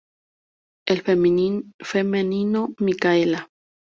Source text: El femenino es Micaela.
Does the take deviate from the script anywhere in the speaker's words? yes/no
yes